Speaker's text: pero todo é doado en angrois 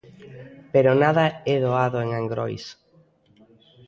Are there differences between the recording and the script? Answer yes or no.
yes